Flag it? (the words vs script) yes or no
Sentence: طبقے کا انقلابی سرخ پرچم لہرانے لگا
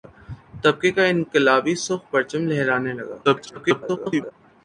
yes